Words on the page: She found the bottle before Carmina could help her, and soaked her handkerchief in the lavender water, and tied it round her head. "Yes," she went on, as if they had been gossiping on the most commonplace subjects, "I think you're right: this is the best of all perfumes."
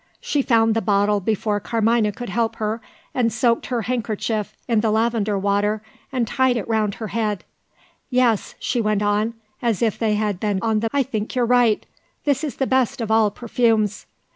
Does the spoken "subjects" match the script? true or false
false